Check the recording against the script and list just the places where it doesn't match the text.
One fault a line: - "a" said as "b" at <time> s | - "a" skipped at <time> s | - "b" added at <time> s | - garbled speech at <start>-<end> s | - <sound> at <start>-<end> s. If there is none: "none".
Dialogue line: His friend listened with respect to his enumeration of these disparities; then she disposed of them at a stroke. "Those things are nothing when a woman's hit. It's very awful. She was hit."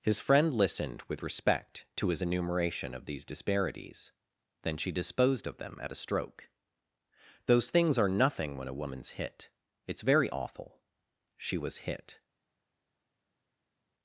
none